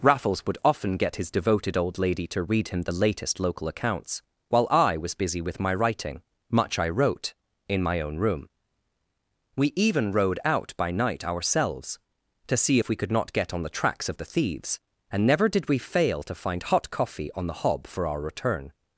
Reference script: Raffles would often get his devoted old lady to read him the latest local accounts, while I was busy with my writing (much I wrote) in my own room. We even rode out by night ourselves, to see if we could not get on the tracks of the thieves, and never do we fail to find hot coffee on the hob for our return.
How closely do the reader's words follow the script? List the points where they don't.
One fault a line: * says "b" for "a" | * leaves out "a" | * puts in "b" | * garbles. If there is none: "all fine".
* says "did" for "do"